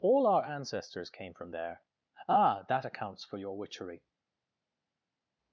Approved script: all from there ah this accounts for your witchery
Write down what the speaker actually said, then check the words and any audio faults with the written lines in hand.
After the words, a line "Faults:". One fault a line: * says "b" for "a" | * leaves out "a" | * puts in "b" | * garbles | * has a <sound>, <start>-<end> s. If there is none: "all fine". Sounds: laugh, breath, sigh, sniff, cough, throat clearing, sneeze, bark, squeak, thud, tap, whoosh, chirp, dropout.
all our ancestors came from there ah that accounts for your witchery
Faults:
* puts in "our ancestors came"
* says "that" for "this"